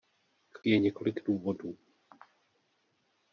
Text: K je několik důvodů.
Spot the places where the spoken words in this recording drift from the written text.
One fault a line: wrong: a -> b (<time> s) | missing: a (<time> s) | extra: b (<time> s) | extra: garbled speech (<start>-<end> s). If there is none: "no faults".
no faults